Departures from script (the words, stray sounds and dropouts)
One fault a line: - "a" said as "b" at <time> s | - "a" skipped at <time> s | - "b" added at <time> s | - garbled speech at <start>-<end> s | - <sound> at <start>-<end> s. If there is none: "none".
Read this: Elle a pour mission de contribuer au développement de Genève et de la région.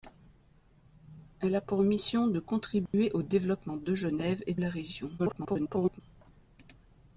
- dropout at 2.9-2.9 s
- "de" skipped at 4.5 s
- garbled speech at 5.2-6.0 s